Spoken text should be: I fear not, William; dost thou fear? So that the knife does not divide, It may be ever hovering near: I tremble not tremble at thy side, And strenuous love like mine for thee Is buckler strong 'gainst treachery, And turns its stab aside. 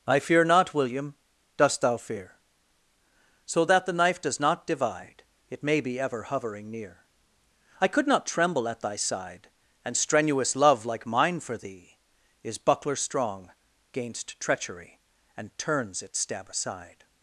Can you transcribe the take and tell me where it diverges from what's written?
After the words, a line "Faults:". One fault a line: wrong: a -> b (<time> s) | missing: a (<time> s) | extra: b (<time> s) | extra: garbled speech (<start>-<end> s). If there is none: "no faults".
I fear not, William; dost thou fear? So that the knife does not divide, It may be ever hovering near: I could not tremble at thy side, And strenuous love like mine for thee Is buckler strong 'gainst treachery, And turns its stab aside.
Faults:
wrong: tremble -> could (7.9 s)